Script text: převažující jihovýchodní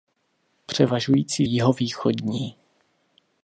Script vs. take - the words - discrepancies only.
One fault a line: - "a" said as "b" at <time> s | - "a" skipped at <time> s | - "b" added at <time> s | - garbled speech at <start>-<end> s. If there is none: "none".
none